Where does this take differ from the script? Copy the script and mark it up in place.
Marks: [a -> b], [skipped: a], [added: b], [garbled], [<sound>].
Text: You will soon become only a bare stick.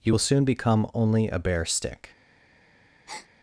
You will soon become only a bare stick. [breath]